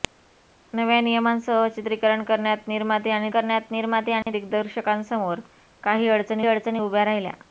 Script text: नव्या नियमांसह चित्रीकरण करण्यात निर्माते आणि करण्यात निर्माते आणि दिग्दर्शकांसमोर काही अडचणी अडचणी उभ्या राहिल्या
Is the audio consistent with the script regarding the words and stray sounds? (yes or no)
no